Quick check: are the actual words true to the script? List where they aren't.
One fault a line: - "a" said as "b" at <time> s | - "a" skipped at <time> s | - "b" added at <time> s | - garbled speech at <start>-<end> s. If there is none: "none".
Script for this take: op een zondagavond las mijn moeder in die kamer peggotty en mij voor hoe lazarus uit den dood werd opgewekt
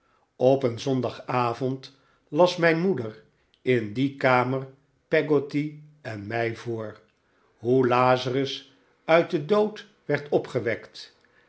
none